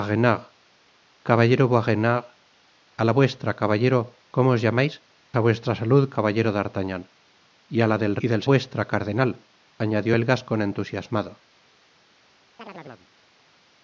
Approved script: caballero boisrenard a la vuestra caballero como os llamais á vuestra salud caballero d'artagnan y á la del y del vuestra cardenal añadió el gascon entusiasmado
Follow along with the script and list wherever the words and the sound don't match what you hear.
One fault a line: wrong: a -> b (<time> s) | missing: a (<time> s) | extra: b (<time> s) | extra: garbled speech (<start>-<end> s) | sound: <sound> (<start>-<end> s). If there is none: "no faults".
sound: chirp (12.6-13.1 s)